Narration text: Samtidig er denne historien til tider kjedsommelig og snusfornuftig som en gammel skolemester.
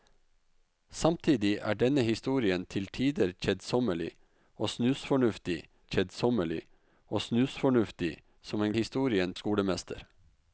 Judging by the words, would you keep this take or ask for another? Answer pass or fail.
fail